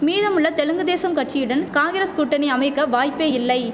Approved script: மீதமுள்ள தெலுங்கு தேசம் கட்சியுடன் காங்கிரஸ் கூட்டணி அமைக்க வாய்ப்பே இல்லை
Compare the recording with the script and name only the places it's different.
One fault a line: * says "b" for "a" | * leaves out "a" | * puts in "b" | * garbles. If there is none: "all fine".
all fine